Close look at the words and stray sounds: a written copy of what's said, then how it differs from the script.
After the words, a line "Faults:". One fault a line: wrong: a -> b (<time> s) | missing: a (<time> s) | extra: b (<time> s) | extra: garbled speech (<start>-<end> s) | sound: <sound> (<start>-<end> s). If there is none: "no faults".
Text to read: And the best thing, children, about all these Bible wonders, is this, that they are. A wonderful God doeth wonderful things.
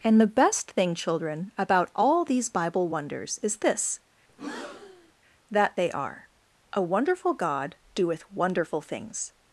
And the best thing, children, about all these Bible wonders, is this, that they are. A wonderful God doeth wonderful things.
Faults:
sound: breath (4.3-5.1 s)